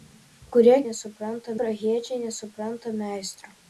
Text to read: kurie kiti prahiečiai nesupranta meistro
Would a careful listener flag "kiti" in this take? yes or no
yes